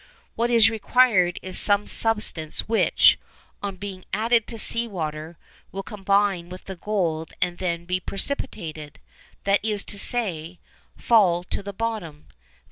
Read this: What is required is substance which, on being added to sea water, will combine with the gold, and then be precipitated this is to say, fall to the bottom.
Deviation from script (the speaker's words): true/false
true